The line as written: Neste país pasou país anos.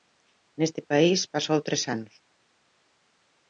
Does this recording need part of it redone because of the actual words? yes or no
yes